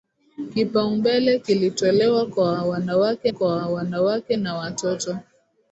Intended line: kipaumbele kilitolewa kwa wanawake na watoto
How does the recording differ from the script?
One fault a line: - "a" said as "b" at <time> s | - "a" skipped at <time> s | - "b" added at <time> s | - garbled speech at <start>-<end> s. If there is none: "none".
- "kwa wanawake" added at 3.3 s